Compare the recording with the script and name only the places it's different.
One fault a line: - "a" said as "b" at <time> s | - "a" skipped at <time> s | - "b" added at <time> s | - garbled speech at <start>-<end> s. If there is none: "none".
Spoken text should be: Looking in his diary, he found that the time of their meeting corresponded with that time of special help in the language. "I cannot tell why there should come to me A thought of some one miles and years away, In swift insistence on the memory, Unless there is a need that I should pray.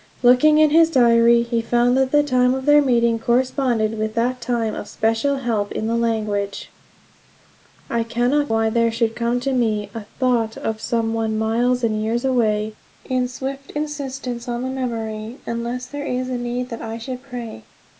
- "tell" skipped at 8.5 s